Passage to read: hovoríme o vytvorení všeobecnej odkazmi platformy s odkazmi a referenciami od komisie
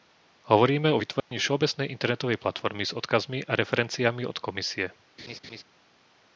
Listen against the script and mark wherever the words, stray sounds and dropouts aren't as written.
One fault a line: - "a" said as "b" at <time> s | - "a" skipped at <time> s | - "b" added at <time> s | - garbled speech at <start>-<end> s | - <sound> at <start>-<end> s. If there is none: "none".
- dropout at 1.2-1.3 s
- "odkazmi" said as "internetovej" at 1.9 s
- laugh at 5.2-5.6 s